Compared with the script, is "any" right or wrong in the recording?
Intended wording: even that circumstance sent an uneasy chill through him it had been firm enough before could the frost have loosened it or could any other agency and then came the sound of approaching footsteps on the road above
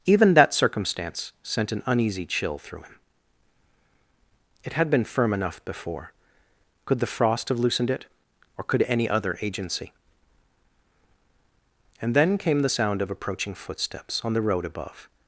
right